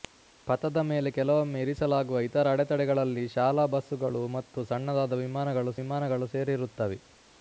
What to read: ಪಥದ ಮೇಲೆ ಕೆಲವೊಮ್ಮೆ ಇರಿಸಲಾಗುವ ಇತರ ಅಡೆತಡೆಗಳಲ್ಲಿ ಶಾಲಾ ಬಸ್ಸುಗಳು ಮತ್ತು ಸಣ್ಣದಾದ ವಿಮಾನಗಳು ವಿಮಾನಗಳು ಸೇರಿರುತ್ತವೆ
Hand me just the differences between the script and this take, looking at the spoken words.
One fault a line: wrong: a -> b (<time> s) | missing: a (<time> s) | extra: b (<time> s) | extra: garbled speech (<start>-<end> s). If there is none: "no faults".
no faults